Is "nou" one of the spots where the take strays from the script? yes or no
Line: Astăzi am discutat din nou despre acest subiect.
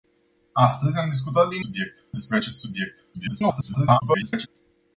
yes